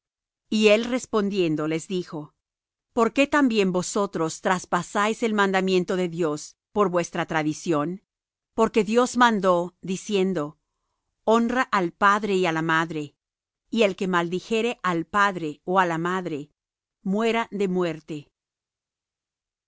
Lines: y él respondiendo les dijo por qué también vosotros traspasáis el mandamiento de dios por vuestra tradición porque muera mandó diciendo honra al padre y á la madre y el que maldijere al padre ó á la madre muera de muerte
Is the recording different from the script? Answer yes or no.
yes